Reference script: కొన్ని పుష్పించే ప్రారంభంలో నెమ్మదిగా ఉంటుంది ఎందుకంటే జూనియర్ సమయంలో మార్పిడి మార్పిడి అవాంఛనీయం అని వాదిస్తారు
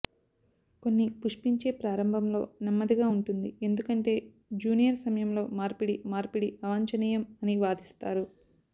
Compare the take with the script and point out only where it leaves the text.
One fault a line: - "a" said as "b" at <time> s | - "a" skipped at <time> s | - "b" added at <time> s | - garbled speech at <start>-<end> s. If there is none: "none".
none